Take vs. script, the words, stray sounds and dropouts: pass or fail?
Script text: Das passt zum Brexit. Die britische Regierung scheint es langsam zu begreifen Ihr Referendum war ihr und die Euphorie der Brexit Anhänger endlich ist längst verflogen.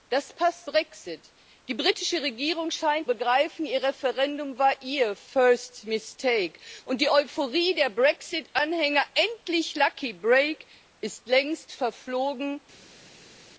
fail